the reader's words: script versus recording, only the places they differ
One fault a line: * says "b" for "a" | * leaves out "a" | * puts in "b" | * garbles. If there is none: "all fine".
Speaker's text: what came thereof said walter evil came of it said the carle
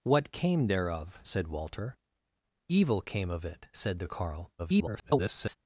* garbles